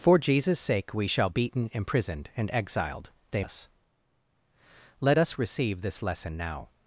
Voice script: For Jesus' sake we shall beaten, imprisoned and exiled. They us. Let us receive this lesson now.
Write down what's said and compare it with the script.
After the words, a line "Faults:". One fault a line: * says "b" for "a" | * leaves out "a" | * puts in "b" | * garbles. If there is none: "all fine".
For Jesus' sake we shall beaten, imprisoned and exiled. They us. Let us receive this lesson now.
Faults:
all fine